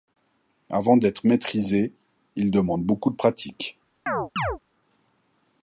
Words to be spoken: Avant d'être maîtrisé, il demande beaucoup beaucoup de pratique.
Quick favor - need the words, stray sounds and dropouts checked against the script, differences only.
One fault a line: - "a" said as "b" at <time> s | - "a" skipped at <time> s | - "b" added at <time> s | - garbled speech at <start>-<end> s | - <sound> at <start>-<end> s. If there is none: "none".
- "beaucoup" skipped at 3.1 s
- chirp at 4.1-4.6 s